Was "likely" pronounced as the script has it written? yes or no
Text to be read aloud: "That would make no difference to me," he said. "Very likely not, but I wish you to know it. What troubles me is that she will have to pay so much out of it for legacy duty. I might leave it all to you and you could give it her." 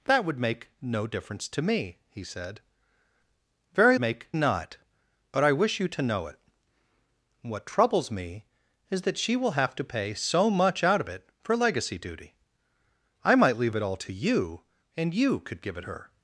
no